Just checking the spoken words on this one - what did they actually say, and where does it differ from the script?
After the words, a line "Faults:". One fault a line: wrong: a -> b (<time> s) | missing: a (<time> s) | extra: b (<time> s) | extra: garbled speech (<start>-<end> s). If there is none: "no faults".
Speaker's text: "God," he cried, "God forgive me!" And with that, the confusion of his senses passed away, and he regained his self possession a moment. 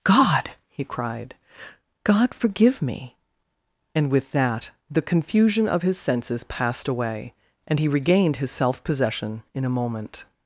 "God," he cried, "God forgive me!" And with that, the confusion of his senses passed away, and he regained his self possession in a moment.
Faults:
extra: in (9.5 s)